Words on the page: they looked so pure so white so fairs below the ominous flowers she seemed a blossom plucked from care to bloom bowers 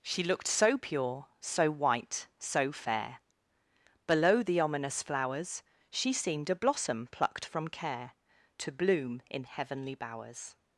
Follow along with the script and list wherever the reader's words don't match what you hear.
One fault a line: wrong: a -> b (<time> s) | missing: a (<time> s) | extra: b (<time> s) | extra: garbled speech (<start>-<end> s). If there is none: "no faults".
wrong: they -> she (0.0 s)
wrong: fairs -> fair (2.7 s)
extra: in heavenly (9.3 s)